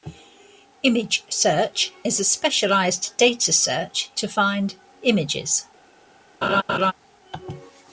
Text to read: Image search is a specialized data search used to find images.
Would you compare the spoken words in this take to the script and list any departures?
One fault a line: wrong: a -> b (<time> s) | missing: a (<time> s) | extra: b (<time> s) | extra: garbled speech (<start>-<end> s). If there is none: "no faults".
missing: used (4.1 s)